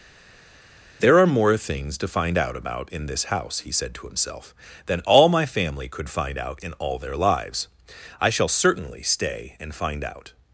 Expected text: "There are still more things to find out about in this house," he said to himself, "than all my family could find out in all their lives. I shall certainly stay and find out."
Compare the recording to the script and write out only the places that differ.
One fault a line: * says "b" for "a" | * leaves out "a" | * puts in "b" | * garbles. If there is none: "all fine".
* leaves out "still"